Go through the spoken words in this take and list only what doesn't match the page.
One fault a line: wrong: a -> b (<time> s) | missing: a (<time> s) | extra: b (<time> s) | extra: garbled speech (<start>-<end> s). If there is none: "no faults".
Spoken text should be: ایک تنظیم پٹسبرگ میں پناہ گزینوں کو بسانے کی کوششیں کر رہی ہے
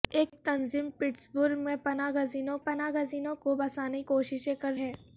extra: پناہ گزینوں (2.6 s)
missing: کی (4.0 s)
missing: رہی (4.7 s)